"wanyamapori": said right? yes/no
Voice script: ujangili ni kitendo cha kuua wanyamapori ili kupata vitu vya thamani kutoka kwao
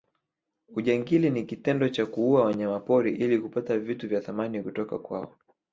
yes